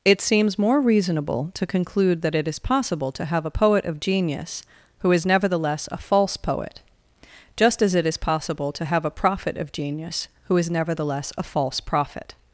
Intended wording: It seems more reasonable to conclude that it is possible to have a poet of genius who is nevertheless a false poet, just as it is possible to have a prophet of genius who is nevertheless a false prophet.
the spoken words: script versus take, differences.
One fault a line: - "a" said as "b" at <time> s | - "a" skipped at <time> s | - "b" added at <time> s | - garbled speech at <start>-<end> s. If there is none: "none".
none